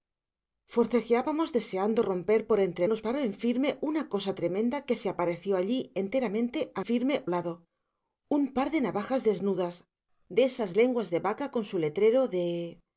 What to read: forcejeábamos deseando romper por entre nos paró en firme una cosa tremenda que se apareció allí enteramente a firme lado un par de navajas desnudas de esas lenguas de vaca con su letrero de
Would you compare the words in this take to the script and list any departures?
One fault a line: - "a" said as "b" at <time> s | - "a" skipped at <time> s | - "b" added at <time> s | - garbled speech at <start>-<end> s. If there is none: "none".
none